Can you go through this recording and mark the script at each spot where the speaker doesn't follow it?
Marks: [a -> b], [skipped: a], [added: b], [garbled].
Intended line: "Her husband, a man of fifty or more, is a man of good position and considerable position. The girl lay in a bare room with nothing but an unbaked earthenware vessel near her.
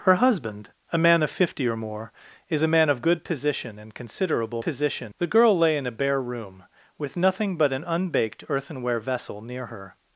"Her husband, a man of fifty or more, is a man of good position and considerable position. The girl lay in a bare room with nothing but an unbaked earthenware vessel near her.